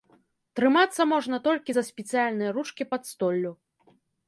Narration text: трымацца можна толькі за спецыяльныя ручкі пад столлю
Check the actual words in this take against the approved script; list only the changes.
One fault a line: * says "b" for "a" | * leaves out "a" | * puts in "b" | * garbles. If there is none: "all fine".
all fine